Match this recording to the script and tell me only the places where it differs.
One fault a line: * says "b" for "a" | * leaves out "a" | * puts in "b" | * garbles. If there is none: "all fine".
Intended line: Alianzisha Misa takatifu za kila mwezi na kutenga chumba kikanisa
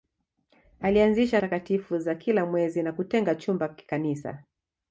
* leaves out "Misa"